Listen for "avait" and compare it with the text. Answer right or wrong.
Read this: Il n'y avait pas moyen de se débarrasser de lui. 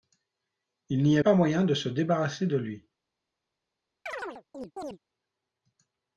wrong